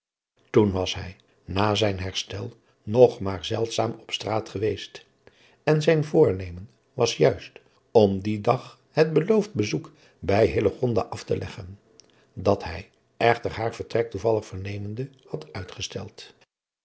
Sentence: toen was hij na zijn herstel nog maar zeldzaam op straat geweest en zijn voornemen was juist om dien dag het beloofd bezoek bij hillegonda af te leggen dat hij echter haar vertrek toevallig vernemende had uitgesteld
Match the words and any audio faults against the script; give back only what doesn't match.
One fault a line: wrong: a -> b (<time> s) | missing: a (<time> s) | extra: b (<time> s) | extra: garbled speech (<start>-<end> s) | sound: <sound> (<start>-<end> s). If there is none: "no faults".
no faults